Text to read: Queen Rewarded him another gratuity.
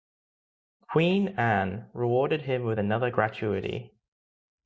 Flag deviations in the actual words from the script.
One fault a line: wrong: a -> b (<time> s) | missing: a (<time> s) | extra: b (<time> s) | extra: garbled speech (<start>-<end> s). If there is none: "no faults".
extra: Anne (1.4 s)
extra: with (2.6 s)